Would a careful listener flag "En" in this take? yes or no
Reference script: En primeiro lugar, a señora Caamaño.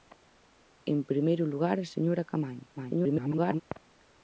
no